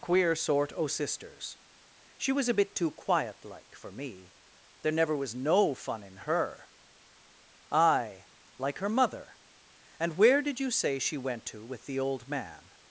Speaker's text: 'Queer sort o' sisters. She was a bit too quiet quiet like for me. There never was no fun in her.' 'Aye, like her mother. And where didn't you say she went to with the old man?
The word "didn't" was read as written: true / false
false